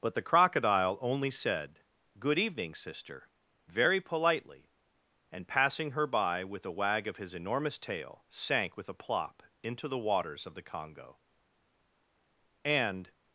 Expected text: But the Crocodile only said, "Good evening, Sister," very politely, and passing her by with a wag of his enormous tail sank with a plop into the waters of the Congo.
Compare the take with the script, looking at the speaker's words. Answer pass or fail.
fail